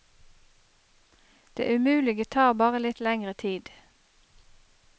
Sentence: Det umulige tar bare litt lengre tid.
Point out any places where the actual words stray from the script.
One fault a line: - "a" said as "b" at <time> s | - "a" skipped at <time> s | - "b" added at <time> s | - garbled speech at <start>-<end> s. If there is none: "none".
none